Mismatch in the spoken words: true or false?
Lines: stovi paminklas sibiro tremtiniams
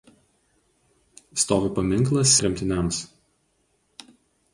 true